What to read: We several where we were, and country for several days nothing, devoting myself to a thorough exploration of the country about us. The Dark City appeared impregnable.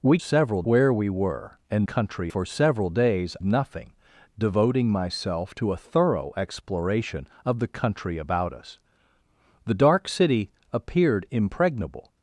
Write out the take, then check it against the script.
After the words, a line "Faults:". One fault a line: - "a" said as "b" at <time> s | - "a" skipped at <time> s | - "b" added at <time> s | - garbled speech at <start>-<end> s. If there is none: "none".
We several where we were, and country for several days nothing, devoting myself to a thorough exploration of the country about us. The Dark City appeared impregnable.
Faults:
none